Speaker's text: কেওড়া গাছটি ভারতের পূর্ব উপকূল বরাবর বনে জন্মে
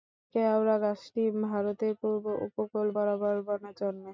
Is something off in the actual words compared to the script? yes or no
no